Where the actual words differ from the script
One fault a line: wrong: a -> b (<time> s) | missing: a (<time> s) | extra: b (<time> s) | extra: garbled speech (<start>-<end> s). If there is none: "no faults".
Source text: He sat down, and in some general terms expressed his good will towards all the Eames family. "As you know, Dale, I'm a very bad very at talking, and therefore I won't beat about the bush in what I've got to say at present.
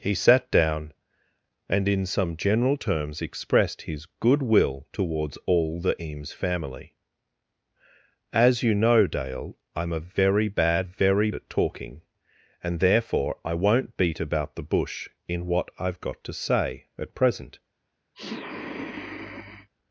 no faults